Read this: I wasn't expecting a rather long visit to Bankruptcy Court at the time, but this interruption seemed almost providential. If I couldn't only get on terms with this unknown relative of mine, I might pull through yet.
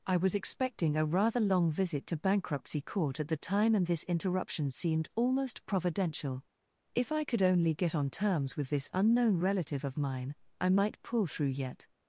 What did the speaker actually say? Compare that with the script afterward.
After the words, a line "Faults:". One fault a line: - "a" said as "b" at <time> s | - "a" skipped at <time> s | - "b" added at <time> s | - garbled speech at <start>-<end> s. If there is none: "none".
I was expecting a rather long visit to Bankruptcy Court at the time, and this interruption seemed almost providential. If I could only get on terms with this unknown relative of mine, I might pull through yet.
Faults:
- "wasn't" said as "was" at 0.2 s
- "but" said as "and" at 3.8 s
- "couldn't" said as "could" at 7.3 s